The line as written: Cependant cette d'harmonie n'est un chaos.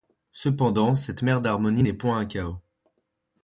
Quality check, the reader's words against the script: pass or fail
fail